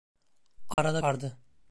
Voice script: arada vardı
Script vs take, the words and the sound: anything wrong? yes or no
yes